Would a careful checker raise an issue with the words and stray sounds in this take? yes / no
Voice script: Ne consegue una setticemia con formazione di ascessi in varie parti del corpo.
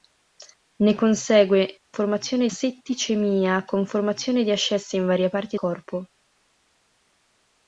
yes